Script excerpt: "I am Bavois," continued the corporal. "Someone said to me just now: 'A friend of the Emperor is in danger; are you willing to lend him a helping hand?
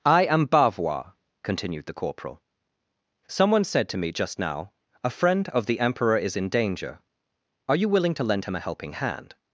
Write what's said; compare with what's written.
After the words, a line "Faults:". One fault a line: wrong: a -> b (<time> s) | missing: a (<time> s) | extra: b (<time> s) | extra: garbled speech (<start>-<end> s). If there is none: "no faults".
"I am Bavois," continued the corporal. "Someone said to me just now: 'A friend of the Emperor is in danger; are you willing to lend him a helping hand?
Faults:
no faults